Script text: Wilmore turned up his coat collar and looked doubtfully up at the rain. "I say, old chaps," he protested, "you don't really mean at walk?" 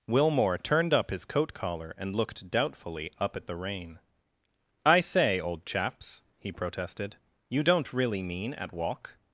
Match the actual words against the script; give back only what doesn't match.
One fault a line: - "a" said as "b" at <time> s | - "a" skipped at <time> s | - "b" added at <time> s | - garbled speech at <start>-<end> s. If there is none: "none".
none